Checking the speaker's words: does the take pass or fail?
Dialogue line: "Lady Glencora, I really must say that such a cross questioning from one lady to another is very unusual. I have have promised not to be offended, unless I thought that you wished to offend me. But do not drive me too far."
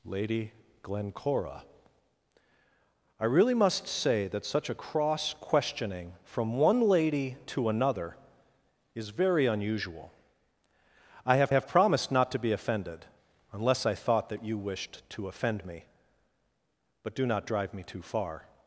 pass